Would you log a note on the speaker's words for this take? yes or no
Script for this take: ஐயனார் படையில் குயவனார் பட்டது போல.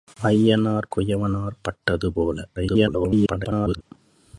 yes